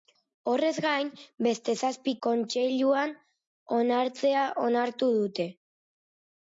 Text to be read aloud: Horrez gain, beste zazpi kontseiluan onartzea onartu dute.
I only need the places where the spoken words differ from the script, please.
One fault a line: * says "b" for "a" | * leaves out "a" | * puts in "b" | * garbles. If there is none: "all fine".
all fine